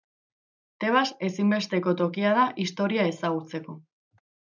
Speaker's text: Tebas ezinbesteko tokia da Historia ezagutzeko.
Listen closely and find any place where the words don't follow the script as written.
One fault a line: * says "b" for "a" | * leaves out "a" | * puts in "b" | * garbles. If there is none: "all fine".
all fine